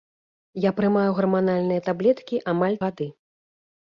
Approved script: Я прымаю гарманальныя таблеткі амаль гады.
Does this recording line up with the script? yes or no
yes